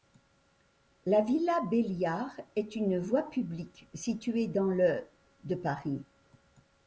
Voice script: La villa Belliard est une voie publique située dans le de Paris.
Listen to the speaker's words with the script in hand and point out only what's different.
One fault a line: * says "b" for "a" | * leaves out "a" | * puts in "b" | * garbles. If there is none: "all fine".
all fine